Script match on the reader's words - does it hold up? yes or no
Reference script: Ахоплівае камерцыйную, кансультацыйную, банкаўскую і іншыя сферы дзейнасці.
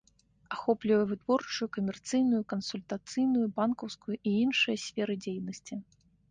no